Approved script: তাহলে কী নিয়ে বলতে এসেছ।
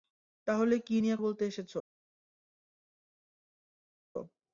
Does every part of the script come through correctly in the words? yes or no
yes